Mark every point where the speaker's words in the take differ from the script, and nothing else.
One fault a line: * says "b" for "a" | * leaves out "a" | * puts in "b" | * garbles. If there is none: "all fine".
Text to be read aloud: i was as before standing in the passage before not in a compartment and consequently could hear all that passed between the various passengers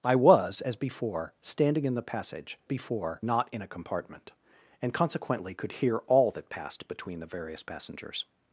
all fine